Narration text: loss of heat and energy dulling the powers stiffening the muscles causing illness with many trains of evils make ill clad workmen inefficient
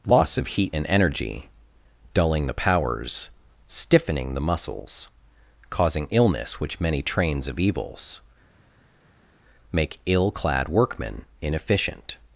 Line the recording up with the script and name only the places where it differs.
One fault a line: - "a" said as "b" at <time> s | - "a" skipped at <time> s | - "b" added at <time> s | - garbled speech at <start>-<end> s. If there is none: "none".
- "with" said as "which" at 6.6 s